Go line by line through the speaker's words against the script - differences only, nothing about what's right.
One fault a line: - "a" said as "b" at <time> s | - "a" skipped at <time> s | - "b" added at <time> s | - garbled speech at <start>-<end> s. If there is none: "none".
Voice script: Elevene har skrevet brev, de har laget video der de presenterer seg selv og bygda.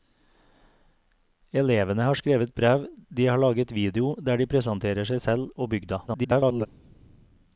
- garbled speech at 6.1-6.7 s